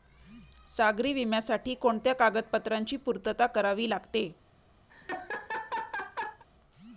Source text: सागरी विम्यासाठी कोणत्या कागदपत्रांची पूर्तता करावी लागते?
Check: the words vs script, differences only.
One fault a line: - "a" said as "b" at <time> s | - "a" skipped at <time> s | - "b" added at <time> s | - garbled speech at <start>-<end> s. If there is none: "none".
none